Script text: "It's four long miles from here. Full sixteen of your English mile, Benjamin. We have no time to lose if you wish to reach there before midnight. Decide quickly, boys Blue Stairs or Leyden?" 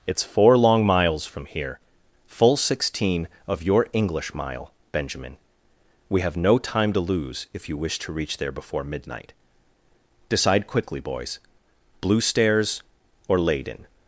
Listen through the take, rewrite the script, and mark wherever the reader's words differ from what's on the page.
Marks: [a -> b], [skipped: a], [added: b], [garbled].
"It's four long miles from here. Full sixteen of your English mile, Benjamin. We have no time to lose if you wish to reach there before midnight. Decide quickly, boys Blue Stairs or Leyden?"